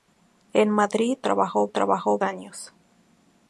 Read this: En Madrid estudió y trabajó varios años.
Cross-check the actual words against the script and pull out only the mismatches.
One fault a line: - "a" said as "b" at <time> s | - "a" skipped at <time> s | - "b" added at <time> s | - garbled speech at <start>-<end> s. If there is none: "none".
- "estudió" said as "trabajó" at 1.2 s
- "varios" skipped at 2.2 s